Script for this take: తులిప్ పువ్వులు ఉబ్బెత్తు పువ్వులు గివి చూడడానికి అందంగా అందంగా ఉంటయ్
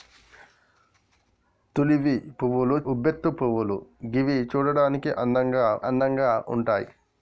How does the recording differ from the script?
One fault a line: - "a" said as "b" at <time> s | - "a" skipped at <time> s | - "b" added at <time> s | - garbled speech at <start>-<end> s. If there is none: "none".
none